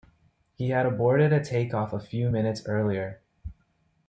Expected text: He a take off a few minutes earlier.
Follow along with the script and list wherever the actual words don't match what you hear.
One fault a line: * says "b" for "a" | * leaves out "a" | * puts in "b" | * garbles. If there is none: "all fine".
* puts in "had aborted"